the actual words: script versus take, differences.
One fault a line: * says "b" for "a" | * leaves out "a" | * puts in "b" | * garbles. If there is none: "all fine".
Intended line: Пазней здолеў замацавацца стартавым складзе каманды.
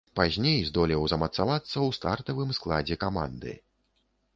* puts in "ў"